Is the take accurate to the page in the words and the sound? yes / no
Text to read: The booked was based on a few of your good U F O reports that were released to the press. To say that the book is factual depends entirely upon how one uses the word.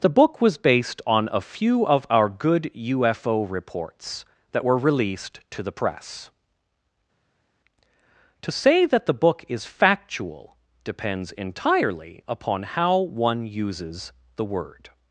no